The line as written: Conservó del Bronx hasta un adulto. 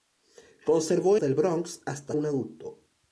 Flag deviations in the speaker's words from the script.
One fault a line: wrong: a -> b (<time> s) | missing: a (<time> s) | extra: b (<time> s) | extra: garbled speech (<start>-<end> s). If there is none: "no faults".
no faults